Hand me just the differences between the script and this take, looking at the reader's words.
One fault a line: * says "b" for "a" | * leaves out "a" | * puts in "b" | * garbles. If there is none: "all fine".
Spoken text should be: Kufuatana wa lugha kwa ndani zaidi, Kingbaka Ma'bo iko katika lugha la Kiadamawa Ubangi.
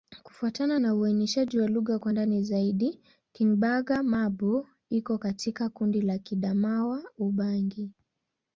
* puts in "na uainishaji"
* says "kundi" for "lugha"